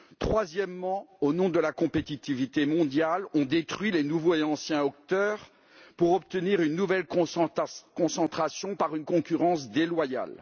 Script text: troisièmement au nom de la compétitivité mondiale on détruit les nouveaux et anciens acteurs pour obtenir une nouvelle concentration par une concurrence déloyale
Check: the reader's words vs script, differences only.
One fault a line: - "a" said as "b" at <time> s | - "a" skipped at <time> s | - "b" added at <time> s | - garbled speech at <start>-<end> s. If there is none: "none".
none